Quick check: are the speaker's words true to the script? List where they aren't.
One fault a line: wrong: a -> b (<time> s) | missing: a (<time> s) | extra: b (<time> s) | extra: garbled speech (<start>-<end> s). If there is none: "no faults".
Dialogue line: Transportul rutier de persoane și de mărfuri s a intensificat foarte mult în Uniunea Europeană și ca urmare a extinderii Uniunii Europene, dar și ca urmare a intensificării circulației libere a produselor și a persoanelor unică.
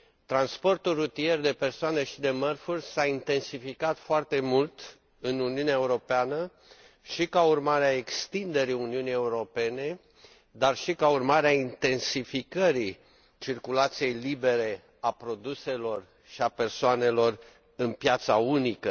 extra: în piața (17.8 s)